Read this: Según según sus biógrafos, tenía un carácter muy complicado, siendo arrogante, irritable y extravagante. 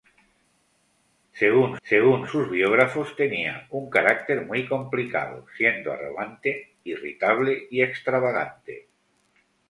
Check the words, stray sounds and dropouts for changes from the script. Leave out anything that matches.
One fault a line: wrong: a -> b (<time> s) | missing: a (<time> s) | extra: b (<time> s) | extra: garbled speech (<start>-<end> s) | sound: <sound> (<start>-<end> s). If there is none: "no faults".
no faults